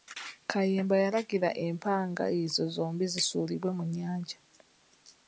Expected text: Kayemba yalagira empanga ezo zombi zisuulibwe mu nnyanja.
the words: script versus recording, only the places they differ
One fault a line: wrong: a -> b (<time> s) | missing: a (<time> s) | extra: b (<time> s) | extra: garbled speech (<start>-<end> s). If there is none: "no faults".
no faults